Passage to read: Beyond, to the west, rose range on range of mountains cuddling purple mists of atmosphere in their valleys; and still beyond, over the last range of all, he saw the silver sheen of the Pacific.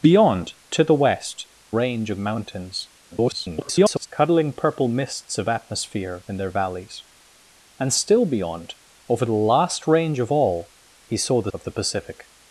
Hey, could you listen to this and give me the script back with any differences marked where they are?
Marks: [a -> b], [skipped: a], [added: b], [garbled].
Beyond, to the west, [skipped: rose] range [skipped: on range] of mountains [garbled] cuddling purple mists of atmosphere in their valleys; and still beyond, over the last range of all, he saw the [skipped: silver sheen] of the Pacific.